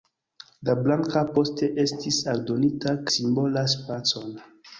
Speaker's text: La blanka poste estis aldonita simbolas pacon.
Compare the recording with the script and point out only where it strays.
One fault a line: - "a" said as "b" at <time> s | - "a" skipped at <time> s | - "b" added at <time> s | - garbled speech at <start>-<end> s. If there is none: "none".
none